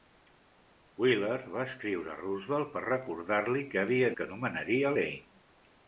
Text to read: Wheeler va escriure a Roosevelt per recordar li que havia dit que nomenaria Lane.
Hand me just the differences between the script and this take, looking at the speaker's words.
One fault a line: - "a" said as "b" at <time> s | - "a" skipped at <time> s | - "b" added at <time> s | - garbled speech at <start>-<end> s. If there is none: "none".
- "dit" skipped at 4.1 s